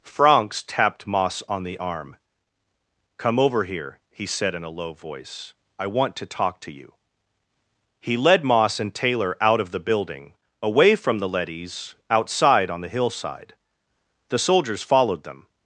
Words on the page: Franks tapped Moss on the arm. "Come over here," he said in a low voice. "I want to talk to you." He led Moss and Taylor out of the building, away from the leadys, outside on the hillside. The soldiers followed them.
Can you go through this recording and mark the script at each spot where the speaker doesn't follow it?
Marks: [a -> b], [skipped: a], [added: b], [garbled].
Franks tapped Moss on the arm. "Come over here," he said in a low voice. "I want to talk to you." He led Moss and Taylor out of the building, away from the leadys, outside on the hillside. The soldiers followed them.